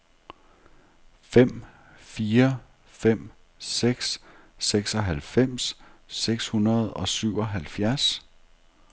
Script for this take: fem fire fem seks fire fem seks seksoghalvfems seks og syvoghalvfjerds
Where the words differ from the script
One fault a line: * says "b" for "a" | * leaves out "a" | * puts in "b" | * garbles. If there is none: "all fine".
* says "seksoghalvfems" for "fire fem"
* says "hundrede" for "seksoghalvfems seks"